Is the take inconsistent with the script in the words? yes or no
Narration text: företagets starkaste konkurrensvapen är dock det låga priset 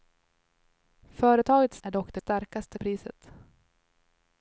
yes